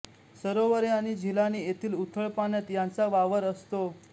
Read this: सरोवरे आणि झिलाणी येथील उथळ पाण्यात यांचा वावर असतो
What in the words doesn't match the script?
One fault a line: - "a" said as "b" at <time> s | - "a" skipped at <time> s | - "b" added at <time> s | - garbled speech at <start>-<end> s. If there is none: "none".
none